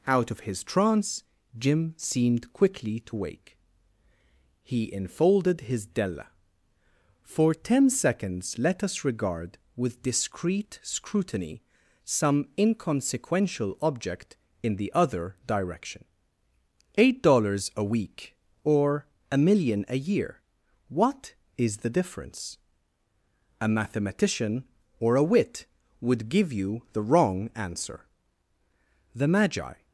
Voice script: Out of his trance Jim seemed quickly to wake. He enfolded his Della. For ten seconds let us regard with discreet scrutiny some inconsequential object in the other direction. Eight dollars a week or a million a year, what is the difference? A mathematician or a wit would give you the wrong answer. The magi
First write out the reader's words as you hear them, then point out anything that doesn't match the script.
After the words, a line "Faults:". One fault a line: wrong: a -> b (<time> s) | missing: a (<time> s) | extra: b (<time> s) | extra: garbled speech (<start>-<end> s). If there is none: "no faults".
Out of his trance Jim seemed quickly to wake. He enfolded his Della. For ten seconds let us regard with discreet scrutiny some inconsequential object in the other direction. Eight dollars a week or a million a year, what is the difference? A mathematician or a wit would give you the wrong answer. The magi
Faults:
no faults